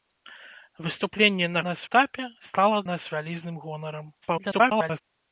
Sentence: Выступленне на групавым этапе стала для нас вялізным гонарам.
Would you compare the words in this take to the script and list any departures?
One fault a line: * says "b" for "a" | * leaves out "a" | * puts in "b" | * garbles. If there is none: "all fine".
* says "нас" for "групавым"
* leaves out "для"
* garbles